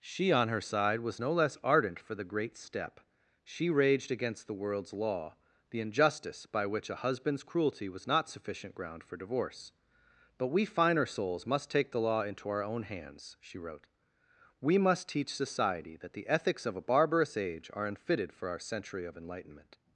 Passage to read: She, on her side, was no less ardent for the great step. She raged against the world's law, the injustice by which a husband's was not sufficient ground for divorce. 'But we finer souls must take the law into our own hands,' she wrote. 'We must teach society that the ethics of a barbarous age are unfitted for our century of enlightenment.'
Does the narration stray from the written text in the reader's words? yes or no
yes